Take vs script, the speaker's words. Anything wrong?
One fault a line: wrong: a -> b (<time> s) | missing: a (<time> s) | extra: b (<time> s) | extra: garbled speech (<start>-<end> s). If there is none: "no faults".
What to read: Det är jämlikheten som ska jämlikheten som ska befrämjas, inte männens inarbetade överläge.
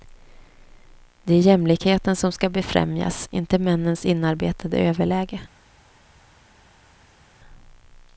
missing: jämlikheten som ska (2.5 s)